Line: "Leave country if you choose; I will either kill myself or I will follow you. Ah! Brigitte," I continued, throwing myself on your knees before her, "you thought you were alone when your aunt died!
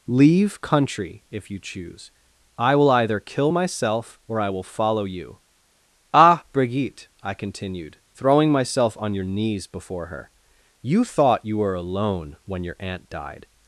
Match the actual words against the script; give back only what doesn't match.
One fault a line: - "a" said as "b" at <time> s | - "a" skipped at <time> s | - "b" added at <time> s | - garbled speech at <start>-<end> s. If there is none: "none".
none